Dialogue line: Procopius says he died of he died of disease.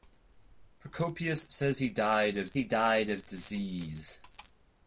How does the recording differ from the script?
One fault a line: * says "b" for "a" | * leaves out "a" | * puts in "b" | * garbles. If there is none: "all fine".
all fine